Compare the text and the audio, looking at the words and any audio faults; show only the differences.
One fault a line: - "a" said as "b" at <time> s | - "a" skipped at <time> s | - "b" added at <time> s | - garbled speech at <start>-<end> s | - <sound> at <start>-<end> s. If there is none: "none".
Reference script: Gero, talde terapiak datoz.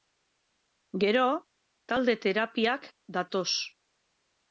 none